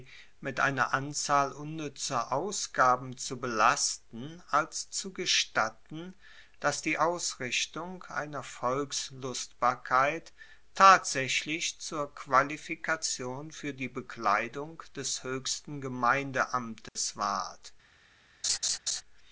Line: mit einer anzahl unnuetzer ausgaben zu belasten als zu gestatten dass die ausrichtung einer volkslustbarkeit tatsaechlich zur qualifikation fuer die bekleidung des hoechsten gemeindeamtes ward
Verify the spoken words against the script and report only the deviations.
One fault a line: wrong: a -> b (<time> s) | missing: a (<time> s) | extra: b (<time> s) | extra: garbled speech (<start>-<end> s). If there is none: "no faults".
no faults